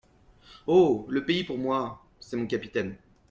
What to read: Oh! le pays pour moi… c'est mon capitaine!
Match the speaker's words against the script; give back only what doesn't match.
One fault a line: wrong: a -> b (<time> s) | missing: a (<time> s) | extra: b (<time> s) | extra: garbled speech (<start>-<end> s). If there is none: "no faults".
no faults